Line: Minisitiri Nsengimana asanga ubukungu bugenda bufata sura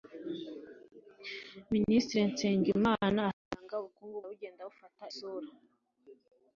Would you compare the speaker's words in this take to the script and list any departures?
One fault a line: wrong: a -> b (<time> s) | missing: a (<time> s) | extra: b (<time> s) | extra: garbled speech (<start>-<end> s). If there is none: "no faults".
no faults